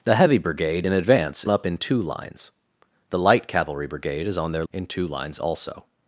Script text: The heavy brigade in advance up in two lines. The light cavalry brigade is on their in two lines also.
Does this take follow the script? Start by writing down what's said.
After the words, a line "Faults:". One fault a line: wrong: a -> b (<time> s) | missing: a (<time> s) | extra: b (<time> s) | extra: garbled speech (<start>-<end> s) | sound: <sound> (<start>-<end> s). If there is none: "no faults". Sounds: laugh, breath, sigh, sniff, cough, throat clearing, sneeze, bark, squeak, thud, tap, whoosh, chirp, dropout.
The heavy brigade in advance up in two lines. The light cavalry brigade is on their in two lines also.
Faults:
no faults